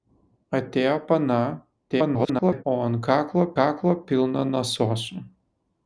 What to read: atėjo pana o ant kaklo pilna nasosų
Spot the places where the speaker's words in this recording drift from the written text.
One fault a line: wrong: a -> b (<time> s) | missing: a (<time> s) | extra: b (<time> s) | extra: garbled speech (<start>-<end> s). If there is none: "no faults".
extra: garbled speech (1.9-2.6 s)
extra: kaklo (3.6 s)